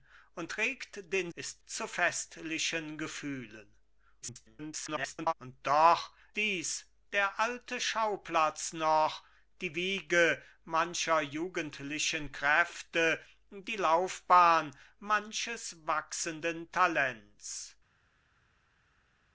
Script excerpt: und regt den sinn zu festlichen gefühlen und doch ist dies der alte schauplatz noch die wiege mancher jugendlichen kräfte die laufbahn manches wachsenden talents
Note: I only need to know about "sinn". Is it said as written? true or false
false